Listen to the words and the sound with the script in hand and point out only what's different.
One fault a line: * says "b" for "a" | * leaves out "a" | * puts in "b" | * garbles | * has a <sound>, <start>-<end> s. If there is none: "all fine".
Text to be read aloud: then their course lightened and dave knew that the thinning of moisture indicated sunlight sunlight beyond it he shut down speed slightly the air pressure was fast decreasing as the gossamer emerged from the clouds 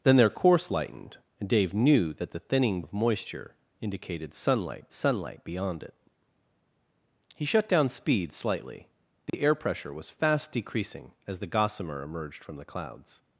* has a dropout, 9.3-9.3 s